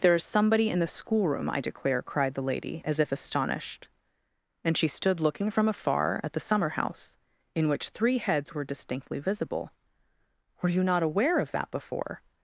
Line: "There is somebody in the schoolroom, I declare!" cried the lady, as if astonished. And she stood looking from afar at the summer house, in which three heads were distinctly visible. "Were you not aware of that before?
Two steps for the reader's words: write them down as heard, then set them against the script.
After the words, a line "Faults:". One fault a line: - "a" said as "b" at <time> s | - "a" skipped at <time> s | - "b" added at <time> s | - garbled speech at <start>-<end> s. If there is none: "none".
"There is somebody in the schoolroom, I declare!" cried the lady, as if astonished. And she stood looking from afar at the summer house, in which three heads were distinctly visible. "Were you not aware of that before?
Faults:
none